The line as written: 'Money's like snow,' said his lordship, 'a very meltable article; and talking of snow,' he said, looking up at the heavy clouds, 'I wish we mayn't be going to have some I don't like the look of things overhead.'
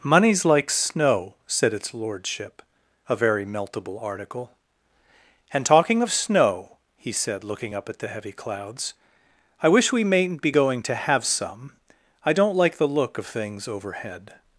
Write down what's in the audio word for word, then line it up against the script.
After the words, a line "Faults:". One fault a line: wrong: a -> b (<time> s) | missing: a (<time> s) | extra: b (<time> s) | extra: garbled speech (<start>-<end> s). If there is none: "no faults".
'Money's like snow,' said its lordship, 'a very meltable article; and talking of snow,' he said, looking up at the heavy clouds, 'I wish we mayn't be going to have some I don't like the look of things overhead.'
Faults:
wrong: his -> its (1.7 s)